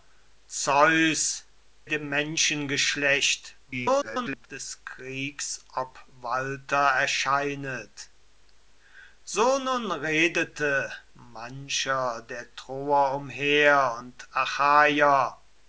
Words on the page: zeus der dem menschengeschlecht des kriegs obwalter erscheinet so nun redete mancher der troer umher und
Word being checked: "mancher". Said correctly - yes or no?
yes